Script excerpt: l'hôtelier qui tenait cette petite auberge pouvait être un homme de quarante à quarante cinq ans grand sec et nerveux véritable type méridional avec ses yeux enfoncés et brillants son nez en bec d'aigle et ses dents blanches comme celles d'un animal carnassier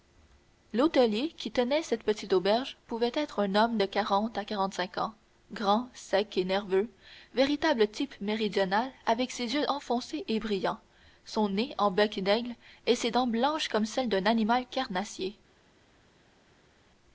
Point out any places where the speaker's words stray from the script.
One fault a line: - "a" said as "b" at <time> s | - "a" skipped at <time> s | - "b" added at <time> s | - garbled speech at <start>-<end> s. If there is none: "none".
none